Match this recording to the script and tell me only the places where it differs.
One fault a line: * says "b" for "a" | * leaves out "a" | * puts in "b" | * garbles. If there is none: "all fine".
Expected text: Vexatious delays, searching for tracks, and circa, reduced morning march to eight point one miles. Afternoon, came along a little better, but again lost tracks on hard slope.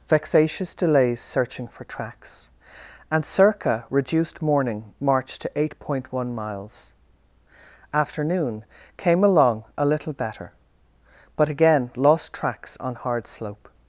all fine